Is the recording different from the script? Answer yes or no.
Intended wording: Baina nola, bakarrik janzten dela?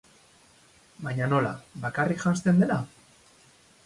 no